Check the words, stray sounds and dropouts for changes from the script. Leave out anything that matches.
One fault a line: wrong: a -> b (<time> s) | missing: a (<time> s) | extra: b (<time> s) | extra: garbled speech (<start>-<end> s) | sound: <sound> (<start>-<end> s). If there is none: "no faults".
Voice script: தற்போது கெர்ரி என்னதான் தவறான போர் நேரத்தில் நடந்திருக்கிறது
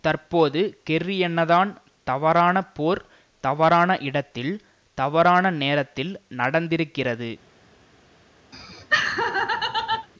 extra: தவறான இடத்தில் தவறான (3.4 s)
sound: laugh (8.5-10.1 s)